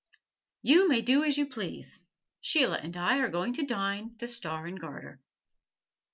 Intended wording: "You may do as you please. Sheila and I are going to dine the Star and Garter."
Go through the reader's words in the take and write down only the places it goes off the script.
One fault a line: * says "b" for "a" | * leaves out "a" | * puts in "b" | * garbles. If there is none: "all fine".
all fine